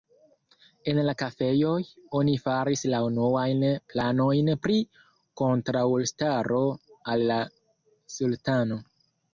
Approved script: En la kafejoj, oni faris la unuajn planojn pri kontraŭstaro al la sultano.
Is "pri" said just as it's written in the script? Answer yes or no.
yes